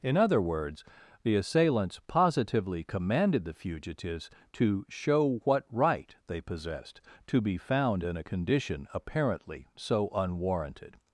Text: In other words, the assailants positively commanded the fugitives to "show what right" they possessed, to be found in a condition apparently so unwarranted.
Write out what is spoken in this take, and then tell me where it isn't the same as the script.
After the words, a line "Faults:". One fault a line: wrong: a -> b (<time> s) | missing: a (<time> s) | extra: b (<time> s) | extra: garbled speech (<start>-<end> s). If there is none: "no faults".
In other words, the assailants positively commanded the fugitives to "show what right" they possessed, to be found in a condition apparently so unwarranted.
Faults:
no faults